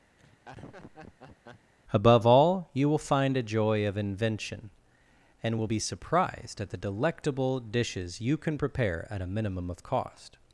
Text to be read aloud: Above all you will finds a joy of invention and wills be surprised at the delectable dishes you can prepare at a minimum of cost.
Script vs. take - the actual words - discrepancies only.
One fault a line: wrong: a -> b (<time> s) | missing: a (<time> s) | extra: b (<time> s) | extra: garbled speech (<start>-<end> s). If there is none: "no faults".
wrong: finds -> find (3.0 s)
wrong: wills -> will (5.6 s)